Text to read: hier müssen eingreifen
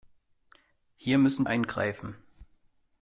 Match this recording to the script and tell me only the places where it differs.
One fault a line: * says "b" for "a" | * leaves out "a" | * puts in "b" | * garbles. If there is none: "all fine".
all fine